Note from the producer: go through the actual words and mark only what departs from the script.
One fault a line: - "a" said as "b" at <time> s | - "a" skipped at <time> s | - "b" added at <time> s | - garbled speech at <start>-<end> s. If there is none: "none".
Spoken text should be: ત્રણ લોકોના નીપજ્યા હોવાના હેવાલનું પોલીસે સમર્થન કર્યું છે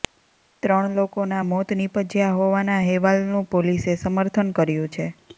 - "મોત" added at 1.5 s